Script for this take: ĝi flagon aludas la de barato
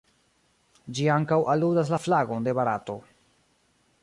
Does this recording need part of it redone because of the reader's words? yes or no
yes